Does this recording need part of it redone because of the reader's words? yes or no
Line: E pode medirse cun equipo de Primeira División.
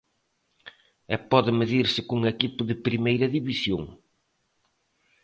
no